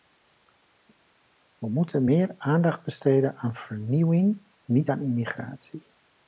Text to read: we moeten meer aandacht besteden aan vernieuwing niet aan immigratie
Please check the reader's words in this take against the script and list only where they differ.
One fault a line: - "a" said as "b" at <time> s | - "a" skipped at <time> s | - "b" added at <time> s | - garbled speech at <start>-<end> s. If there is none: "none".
none